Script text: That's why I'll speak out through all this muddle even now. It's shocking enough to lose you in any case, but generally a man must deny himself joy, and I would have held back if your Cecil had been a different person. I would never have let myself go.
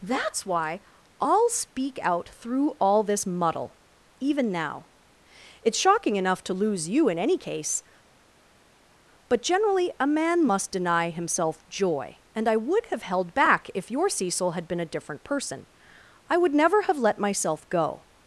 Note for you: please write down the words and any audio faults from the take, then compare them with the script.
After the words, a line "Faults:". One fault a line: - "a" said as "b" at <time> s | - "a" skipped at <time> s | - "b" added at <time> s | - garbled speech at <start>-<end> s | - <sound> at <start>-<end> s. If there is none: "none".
That's why I'll speak out through all this muddle even now. It's shocking enough to lose you in any case, but generally a man must deny himself joy, and I would have held back if your Cecil had been a different person. I would never have let myself go.
Faults:
none